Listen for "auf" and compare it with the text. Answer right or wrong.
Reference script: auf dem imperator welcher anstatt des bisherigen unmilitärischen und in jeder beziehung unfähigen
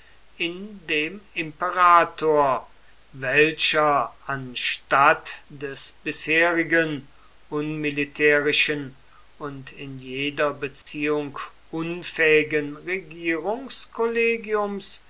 wrong